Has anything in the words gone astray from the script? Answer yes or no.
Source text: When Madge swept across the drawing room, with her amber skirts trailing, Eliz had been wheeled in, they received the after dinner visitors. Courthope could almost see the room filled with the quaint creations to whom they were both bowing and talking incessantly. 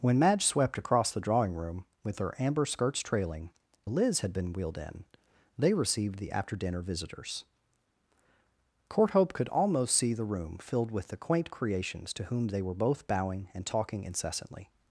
no